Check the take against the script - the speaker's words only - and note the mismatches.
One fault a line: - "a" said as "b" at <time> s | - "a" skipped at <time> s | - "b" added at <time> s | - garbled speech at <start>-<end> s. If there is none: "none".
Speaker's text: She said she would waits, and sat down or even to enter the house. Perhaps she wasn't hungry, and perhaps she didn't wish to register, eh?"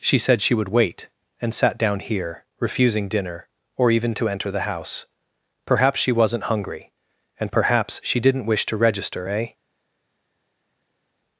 - "waits" said as "wait" at 0.7 s
- "here refusing dinner" added at 2.0 s